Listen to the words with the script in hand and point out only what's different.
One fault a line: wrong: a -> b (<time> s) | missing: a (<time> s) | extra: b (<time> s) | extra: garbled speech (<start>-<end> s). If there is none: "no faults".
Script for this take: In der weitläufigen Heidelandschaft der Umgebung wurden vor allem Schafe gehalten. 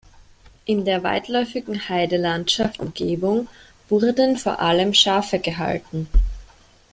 missing: der (2.8 s)